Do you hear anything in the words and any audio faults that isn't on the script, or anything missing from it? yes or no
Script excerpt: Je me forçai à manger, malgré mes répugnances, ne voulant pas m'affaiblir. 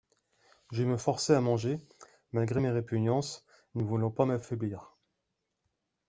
no